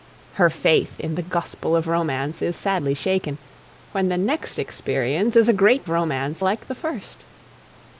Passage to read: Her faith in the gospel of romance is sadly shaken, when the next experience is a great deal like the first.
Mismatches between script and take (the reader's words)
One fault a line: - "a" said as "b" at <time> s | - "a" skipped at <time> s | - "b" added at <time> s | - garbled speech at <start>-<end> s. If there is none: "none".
- "deal" said as "romance" at 5.9 s